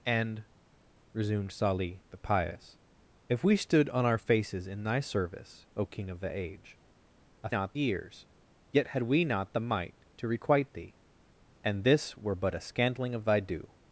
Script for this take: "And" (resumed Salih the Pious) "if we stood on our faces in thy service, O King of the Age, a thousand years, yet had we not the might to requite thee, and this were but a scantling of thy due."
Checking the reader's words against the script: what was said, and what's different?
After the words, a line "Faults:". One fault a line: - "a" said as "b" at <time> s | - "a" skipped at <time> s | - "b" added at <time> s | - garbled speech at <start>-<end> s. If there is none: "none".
"And" (resumed Salih the Pious) "if we stood on our faces in thy service, O King of the Age, a not years, yet had we not the might to requite thee, and this were but a scantling of thy due."
Faults:
- "thousand" said as "not" at 7.5 s